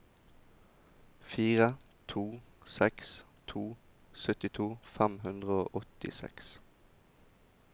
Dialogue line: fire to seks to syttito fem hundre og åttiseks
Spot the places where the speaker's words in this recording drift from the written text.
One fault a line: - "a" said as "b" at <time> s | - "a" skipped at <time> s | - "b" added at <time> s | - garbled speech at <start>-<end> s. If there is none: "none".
none